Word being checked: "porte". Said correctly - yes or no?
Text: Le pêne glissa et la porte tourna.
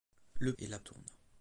no